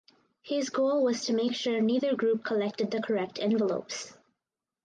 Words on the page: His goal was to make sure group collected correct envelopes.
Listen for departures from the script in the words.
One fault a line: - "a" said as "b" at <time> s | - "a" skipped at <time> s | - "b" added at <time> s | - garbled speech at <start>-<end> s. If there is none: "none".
- "neither" added at 1.8 s
- "the" added at 2.9 s